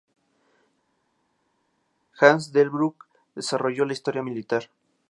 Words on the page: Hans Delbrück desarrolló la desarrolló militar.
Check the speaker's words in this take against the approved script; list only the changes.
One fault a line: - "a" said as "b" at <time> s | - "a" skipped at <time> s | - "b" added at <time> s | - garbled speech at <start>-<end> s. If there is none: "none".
- "desarrolló" said as "historia" at 3.9 s